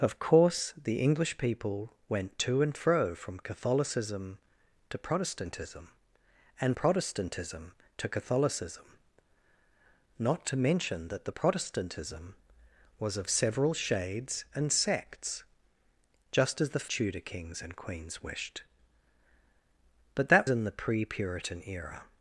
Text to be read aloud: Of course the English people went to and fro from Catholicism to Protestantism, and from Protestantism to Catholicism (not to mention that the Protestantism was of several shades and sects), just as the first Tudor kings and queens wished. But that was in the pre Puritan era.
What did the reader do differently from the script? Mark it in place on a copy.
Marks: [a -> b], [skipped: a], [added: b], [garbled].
Of course the English people went to and fro from Catholicism to Protestantism, and [skipped: from] Protestantism to Catholicism (not to mention that the Protestantism was of several shades and sects), just as the [skipped: first] Tudor kings and queens wished. But that [skipped: was] in the pre Puritan era.